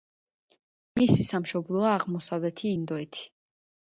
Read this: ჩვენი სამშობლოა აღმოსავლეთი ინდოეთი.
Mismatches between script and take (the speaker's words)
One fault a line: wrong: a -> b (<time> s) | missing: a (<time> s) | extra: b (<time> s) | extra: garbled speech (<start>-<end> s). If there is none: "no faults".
wrong: ჩვენი -> მისი (1.0 s)